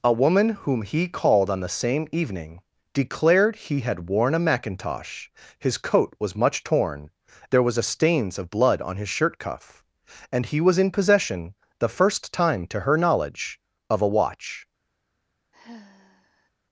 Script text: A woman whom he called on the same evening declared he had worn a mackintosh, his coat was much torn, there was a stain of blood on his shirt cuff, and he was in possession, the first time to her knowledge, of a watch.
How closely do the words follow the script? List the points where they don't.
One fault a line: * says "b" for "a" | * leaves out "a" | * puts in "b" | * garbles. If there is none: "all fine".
* says "stains" for "stain"